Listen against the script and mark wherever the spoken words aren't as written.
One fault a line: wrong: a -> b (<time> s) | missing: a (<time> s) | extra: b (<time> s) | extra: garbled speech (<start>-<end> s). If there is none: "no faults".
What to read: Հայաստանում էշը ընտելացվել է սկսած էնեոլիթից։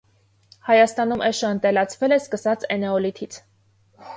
no faults